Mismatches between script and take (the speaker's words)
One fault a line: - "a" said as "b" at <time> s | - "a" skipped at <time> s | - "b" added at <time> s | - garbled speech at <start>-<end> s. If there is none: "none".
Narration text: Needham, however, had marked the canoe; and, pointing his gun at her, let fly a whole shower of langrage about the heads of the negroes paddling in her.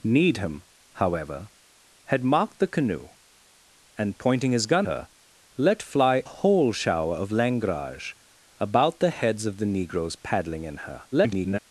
- "at" skipped at 4.9 s
- "a" skipped at 6.2 s
- garbled speech at 11.1-11.6 s